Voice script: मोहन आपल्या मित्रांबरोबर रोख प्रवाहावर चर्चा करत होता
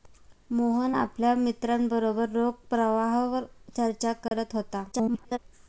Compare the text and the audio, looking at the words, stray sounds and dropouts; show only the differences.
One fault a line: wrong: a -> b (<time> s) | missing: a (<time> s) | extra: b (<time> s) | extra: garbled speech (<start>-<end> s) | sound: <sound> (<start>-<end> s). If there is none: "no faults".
sound: dropout (4.3-4.3 s)
extra: garbled speech (4.9-5.4 s)